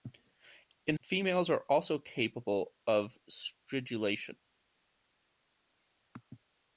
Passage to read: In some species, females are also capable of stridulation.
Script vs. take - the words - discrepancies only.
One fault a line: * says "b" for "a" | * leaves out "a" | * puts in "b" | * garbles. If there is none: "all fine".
* leaves out "some species"